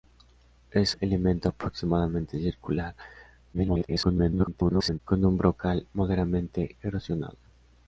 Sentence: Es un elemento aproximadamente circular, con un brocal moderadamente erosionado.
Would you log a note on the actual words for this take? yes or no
yes